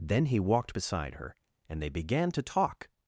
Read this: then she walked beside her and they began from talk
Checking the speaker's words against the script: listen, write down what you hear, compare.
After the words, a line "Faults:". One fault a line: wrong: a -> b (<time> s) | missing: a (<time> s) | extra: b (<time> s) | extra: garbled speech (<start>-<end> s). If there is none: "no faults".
then he walked beside her and they began to talk
Faults:
wrong: she -> he (0.2 s)
wrong: from -> to (2.3 s)